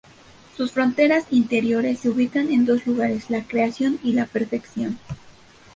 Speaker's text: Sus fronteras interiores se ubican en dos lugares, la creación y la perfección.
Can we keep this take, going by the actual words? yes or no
yes